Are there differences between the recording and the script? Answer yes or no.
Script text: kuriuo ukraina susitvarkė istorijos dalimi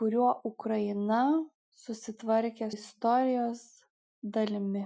no